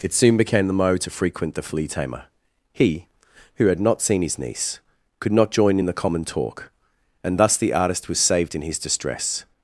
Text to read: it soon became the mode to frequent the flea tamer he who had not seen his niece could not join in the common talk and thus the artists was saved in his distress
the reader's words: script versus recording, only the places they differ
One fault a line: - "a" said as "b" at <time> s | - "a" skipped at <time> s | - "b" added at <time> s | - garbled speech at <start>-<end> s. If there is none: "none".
- "artists" said as "artist" at 7.7 s